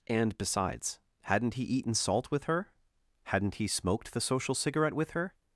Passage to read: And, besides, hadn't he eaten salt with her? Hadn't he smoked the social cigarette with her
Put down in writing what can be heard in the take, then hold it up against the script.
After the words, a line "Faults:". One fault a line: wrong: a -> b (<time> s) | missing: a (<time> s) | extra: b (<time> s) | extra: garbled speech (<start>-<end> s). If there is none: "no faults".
And, besides, hadn't he eaten salt with her? Hadn't he smoked the social cigarette with her
Faults:
no faults